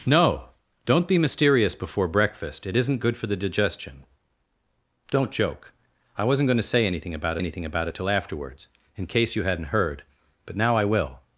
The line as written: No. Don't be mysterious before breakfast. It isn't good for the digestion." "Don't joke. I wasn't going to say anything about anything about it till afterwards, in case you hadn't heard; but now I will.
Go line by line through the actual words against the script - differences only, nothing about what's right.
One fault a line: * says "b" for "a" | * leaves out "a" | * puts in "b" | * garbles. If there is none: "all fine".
all fine